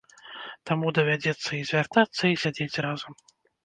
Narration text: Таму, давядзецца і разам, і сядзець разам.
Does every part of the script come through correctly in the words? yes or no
no